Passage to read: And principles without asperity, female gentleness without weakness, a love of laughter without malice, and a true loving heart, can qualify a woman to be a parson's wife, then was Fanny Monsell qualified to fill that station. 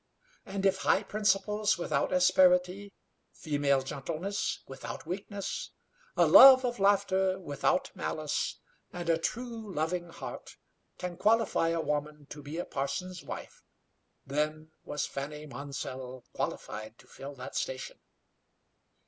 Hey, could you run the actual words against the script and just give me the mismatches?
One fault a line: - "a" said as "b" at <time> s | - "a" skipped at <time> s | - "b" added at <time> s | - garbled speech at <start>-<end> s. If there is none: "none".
- "if high" added at 0.7 s